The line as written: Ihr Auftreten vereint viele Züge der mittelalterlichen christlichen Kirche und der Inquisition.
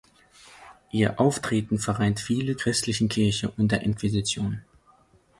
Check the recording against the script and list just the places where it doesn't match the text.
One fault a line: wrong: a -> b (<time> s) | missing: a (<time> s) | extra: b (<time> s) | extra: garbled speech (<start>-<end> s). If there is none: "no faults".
missing: Züge der mittelalterlichen (2.6 s)